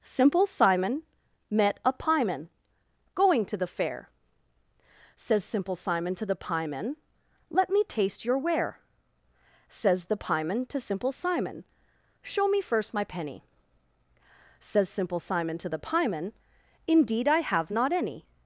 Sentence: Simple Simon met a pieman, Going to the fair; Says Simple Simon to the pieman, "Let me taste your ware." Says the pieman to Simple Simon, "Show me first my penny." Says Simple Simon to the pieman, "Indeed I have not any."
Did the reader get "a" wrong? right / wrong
right